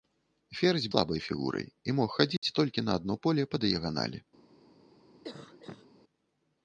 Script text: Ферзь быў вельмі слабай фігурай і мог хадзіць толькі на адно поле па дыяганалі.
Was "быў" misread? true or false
true